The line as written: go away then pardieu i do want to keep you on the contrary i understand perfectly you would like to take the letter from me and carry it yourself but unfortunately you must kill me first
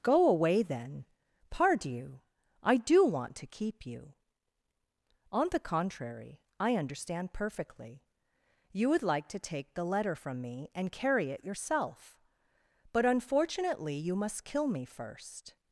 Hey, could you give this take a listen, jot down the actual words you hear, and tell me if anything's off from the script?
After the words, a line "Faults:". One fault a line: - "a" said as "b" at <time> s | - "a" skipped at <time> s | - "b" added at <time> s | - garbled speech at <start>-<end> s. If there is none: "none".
go away then pardieu i do want to keep you on the contrary i understand perfectly you would like to take the letter from me and carry it yourself but unfortunately you must kill me first
Faults:
none